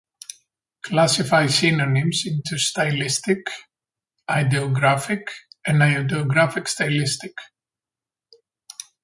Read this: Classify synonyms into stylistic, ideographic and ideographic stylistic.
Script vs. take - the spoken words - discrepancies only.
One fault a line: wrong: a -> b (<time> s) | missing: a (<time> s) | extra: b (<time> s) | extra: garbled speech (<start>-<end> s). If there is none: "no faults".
no faults